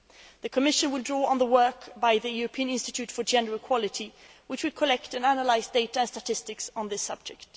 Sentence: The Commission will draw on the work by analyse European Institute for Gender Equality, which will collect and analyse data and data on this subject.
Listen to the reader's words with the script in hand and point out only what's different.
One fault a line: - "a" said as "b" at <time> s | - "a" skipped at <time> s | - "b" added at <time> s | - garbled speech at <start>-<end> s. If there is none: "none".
- "analyse" said as "the" at 2.2 s
- "data" said as "statistics" at 6.1 s